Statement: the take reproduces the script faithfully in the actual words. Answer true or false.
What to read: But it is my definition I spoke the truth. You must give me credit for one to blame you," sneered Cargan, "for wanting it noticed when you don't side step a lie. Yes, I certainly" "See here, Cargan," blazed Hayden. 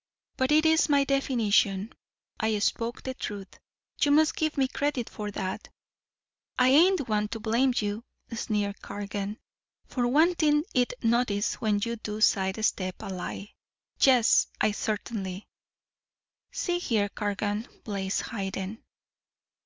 false